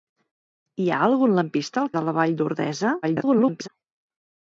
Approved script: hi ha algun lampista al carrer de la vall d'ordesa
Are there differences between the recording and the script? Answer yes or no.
yes